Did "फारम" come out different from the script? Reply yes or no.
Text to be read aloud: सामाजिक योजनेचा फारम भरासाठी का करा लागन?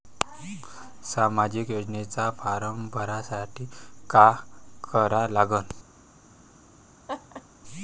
no